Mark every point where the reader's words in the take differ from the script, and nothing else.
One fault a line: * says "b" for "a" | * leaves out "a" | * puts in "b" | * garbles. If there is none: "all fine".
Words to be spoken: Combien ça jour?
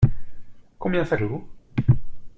all fine